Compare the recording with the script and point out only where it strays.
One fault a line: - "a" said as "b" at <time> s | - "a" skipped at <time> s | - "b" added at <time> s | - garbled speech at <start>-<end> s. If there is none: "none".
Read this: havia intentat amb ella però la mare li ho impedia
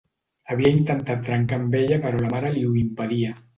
- "trencar" added at 1.3 s